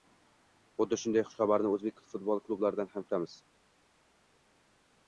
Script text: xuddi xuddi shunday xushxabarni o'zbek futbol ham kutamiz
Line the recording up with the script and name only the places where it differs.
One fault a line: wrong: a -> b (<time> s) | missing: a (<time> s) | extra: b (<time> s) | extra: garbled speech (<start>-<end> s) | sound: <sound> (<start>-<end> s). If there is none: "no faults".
missing: xuddi (1.0 s)
extra: klublaridan (2.5 s)